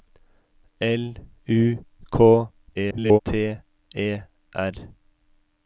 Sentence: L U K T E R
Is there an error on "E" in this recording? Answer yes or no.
no